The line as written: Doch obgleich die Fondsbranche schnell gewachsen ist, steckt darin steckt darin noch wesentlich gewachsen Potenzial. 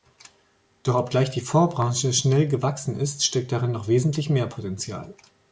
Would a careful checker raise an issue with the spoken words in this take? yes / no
yes